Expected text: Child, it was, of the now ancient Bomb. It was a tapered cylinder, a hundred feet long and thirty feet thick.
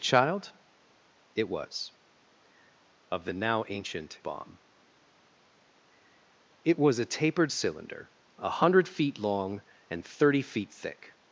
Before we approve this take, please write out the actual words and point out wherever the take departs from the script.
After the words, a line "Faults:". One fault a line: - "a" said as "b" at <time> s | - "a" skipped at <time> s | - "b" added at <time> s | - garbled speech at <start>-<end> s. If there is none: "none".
Child, it was, of the now ancient Bomb. It was a tapered cylinder, a hundred feet long and thirty feet thick.
Faults:
none